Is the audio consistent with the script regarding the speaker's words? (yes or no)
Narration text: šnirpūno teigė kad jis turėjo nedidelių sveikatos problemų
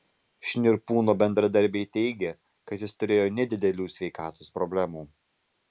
no